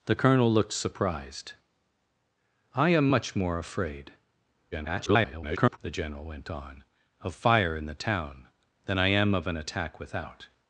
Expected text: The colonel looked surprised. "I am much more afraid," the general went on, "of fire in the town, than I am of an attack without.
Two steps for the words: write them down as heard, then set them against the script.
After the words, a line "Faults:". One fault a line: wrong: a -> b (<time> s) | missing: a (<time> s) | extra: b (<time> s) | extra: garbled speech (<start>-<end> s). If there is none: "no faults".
The colonel looked surprised. "I am much more afraid," [garbled] the general went on, "of fire in the town, than I am of an attack without.
Faults:
extra: garbled speech (4.7-5.8 s)